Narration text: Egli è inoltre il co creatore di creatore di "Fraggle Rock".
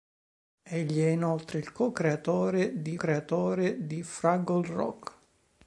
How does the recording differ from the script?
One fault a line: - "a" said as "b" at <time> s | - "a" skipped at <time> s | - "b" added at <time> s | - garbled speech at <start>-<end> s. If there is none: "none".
none